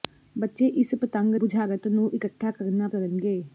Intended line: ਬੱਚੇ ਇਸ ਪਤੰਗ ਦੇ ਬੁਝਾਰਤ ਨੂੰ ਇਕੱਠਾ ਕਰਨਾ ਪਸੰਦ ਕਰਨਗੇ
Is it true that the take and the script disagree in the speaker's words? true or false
true